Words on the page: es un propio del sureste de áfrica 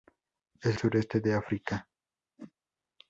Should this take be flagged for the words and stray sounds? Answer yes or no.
yes